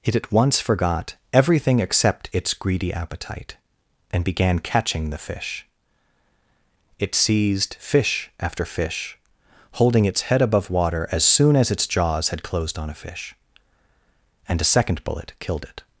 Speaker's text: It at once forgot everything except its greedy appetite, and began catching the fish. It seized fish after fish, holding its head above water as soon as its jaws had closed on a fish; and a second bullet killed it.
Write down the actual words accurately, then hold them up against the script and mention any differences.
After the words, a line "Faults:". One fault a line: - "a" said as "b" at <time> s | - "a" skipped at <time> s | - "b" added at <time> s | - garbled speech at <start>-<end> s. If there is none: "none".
It at once forgot everything except its greedy appetite, and began catching the fish. It seized fish after fish, holding its head above water as soon as its jaws had closed on a fish; and a second bullet killed it.
Faults:
none